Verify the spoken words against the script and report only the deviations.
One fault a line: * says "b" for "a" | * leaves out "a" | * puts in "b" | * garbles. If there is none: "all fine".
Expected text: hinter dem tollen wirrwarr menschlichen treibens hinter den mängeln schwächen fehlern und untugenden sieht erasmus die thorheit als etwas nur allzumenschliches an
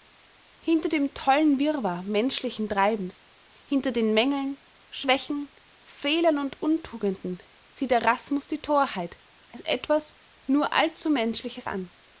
all fine